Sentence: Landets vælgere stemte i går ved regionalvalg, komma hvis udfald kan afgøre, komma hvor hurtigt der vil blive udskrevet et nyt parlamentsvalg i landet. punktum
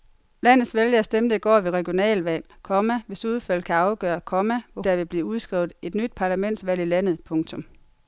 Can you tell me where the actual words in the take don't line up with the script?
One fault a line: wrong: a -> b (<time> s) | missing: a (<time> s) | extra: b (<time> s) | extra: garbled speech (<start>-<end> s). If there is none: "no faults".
missing: hurtigt (4.8 s)